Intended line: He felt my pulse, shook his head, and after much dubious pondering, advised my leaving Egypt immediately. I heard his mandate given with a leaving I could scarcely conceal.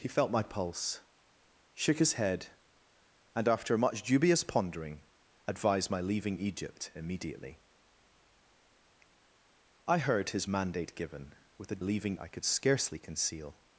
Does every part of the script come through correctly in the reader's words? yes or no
yes